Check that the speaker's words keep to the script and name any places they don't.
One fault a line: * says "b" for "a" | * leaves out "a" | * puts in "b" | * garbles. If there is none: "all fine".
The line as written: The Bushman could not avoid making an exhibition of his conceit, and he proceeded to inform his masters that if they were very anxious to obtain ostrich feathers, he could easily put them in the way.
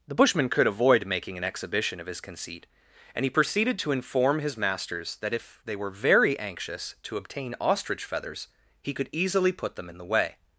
* leaves out "not"